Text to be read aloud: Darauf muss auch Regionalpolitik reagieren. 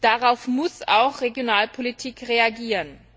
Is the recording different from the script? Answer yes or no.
no